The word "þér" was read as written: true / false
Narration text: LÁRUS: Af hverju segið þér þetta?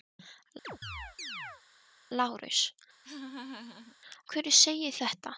false